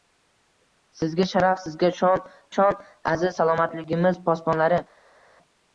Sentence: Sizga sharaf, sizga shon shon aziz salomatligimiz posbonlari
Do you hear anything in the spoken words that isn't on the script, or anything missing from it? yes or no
no